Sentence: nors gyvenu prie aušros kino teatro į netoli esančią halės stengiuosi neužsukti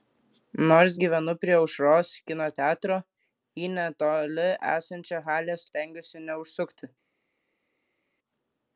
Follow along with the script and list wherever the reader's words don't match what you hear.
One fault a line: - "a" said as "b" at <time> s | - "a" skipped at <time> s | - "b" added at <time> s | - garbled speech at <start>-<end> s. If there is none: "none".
none